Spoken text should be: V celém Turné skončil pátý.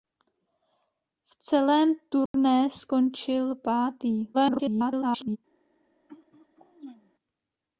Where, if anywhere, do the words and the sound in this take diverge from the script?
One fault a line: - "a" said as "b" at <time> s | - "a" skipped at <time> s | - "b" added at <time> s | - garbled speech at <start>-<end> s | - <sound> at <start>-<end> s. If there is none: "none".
- dropout at 2.3-2.3 s
- garbled speech at 4.3-5.4 s
- throat clearing at 6.1-7.1 s